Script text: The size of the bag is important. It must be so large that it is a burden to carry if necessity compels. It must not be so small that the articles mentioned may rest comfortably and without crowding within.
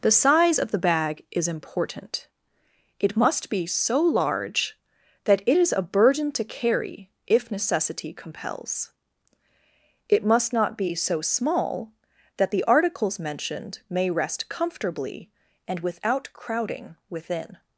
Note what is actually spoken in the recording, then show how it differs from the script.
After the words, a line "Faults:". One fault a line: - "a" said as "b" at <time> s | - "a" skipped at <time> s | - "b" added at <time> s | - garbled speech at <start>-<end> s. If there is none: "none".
The size of the bag is important. It must be so large that it is a burden to carry if necessity compels. It must not be so small that the articles mentioned may rest comfortably and without crowding within.
Faults:
none